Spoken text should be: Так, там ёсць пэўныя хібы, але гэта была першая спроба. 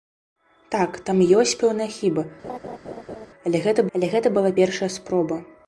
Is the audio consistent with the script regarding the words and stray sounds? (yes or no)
no